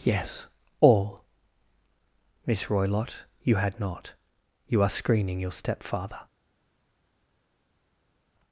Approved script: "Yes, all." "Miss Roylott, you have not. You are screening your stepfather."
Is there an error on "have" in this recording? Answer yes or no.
yes